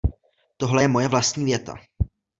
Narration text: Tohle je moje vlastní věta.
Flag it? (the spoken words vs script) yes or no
no